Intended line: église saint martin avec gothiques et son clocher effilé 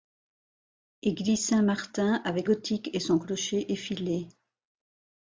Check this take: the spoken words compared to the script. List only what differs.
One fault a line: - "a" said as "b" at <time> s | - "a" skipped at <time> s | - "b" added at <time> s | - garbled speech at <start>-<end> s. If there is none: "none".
none